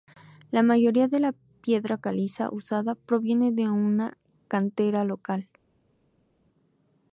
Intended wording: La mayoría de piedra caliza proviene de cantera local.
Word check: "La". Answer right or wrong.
right